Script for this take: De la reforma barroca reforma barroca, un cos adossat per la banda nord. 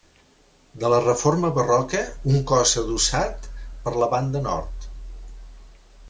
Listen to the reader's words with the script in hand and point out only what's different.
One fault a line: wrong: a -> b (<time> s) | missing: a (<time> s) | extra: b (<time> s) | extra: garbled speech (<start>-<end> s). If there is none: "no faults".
missing: reforma barroca (2.0 s)